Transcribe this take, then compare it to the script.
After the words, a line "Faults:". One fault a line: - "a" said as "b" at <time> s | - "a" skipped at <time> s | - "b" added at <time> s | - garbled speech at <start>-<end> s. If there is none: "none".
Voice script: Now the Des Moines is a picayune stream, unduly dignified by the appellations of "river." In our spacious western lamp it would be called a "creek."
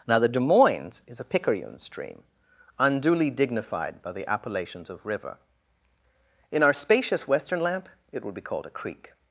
Now the Des Moines is a picayune stream, unduly dignified by the appellations of "river." In our spacious western lamp it would be called a "creek."
Faults:
none